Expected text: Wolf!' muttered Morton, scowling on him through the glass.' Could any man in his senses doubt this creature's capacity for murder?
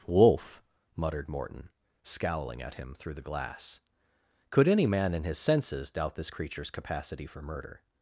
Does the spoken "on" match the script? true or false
false